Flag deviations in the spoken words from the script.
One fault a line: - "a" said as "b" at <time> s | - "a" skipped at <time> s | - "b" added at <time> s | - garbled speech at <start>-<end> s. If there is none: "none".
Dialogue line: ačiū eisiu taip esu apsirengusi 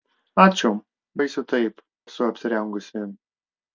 none